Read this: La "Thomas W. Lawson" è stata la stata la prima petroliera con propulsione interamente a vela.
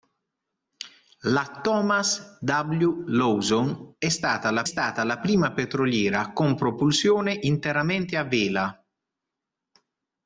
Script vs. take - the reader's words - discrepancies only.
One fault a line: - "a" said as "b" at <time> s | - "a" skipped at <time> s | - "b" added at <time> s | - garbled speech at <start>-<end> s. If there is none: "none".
none